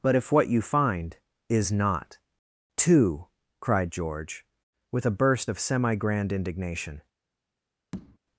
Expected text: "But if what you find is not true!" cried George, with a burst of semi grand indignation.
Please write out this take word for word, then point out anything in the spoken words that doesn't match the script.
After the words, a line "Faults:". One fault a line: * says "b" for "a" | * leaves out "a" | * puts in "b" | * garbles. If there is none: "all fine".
"But if what you find is not two!" cried George, with a burst of semi grand indignation.
Faults:
* says "two" for "true"